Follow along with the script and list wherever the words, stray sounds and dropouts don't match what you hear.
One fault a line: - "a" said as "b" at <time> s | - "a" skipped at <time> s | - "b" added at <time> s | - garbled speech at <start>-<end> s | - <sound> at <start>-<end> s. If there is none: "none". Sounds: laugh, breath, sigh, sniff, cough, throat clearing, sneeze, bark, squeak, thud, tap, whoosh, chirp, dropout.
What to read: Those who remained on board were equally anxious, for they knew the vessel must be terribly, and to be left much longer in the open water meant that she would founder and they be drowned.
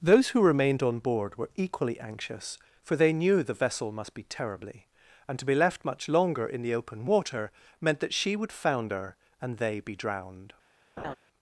- laugh at 11.0-11.2 s